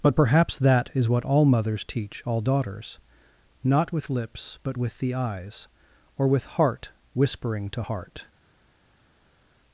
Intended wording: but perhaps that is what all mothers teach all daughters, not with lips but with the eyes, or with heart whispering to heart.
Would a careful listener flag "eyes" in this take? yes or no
no